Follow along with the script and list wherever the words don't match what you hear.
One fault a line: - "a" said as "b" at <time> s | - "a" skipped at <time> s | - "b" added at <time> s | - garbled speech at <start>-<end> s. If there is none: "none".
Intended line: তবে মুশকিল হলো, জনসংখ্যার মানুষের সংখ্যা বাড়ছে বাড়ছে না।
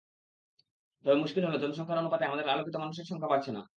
- "অনুপাতে আমাদের আলোকিত" added at 2.0 s
- "বাড়ছে" skipped at 3.5 s